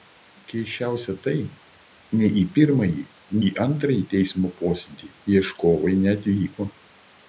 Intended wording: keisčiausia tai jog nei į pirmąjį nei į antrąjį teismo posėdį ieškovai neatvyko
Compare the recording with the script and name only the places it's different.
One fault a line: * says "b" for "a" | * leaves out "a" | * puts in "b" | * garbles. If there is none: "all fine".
* leaves out "jog"
* leaves out "nei"